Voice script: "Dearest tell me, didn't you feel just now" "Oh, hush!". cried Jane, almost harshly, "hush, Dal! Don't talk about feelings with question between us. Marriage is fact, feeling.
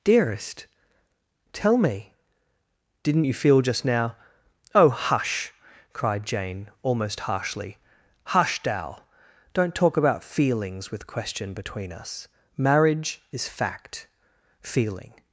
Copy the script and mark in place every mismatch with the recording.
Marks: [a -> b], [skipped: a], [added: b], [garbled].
"Dearest tell me, didn't you feel just now" "Oh, hush!". cried Jane, almost harshly, "hush, Dal! Don't talk about feelings with question between us. Marriage is fact, feeling.